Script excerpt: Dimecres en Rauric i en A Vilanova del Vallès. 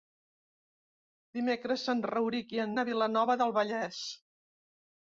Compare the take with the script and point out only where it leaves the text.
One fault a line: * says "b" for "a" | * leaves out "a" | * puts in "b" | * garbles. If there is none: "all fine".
all fine